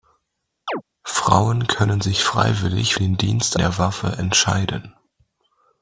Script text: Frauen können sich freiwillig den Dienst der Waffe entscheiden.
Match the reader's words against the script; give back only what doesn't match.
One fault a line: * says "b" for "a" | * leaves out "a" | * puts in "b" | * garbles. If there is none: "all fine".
all fine